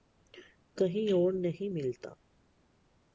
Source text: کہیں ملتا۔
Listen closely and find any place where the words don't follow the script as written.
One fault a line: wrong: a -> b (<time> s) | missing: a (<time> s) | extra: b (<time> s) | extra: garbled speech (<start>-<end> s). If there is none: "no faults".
extra: اور نہیں (1.1 s)